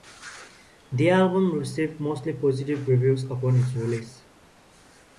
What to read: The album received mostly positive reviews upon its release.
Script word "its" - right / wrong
right